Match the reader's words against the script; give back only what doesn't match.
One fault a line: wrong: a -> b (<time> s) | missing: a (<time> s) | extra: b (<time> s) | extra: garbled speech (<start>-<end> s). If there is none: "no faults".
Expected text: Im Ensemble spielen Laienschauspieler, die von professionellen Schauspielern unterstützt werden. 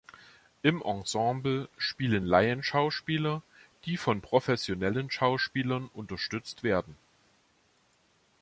no faults